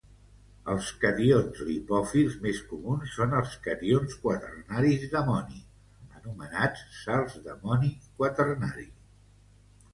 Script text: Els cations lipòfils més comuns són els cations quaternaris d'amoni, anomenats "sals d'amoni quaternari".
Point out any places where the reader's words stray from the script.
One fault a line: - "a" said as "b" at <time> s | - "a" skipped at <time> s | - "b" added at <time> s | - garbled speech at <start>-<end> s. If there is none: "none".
none